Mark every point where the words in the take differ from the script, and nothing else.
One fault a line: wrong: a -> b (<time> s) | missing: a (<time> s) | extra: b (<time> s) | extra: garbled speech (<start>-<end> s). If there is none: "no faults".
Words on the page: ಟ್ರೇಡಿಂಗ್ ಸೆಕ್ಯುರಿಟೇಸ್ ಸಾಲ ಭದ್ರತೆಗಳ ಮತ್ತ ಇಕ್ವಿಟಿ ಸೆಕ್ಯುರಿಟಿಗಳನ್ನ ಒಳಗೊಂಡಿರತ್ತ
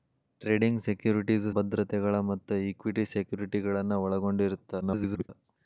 missing: ಸಾಲ (1.5 s)
extra: garbled speech (4.8-5.3 s)